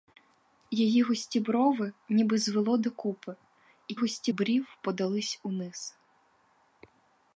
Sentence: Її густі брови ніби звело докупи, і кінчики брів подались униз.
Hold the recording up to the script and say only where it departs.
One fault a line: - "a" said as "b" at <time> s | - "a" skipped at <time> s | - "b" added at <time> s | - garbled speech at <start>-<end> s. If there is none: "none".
- "кінчики" said as "густі" at 3.9 s